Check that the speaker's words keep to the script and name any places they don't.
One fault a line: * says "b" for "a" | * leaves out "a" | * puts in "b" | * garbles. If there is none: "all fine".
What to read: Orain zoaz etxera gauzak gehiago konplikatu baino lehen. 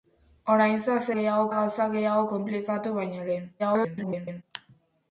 * says "gehiago" for "etxera"
* garbles